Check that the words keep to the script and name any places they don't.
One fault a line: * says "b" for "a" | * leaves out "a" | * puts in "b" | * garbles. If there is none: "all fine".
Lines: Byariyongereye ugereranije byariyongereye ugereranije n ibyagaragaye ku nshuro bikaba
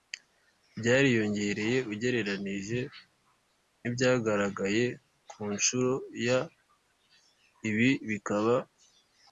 * leaves out "byariyongereye ugereranije"
* puts in "ya ibi"